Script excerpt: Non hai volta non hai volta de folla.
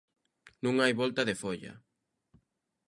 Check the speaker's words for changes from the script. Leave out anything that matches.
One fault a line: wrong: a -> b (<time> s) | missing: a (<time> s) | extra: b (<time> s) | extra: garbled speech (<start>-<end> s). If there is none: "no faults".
missing: non hai volta (1.2 s)